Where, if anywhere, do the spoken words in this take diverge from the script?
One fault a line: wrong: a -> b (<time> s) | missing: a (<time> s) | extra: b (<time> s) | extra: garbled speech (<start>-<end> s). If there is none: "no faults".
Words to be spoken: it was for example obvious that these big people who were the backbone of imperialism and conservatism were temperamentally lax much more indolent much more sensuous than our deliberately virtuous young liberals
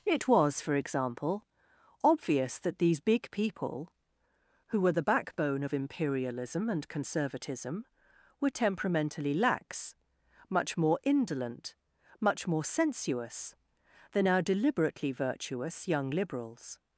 no faults